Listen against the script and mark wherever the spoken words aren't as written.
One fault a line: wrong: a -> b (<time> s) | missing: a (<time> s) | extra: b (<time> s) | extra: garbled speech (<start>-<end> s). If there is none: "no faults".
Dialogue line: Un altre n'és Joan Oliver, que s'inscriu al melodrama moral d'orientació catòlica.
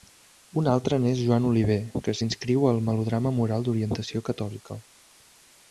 no faults